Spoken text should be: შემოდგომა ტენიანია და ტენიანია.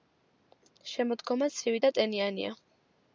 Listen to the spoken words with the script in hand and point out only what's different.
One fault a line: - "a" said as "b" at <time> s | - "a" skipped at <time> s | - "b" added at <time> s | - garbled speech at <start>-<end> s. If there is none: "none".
- "ტენიანია" said as "ცივი" at 1.6 s